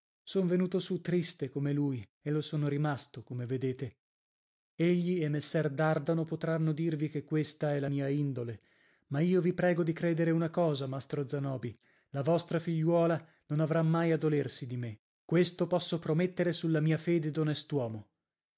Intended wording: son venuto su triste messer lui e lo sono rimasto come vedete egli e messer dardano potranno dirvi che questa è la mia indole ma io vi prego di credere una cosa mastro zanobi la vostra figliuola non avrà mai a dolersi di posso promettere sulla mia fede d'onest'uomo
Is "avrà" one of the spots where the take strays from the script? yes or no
no